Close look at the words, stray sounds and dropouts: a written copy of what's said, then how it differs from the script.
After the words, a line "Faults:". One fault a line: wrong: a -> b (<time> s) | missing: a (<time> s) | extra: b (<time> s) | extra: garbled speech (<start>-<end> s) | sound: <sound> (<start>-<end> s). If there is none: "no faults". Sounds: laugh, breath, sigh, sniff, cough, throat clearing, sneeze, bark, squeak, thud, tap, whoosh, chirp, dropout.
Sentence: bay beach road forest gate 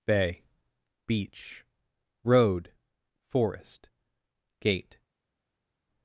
bay beach road forest gate
Faults:
no faults